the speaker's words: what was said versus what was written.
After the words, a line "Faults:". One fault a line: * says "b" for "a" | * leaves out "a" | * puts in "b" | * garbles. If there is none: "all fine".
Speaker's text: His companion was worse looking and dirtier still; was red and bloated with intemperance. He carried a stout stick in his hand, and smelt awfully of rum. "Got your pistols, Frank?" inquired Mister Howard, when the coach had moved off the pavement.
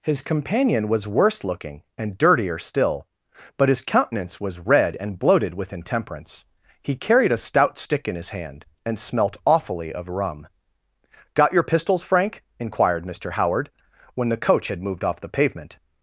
His companion was worse looking and dirtier still; but his countenance was red and bloated with intemperance. He carried a stout stick in his hand, and smelt awfully of rum. "Got your pistols, Frank?" inquired Mister Howard, when the coach had moved off the pavement.
Faults:
* puts in "but his countenance"